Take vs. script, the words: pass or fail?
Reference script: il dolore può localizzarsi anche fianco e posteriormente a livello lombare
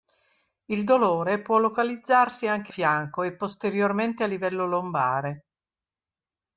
pass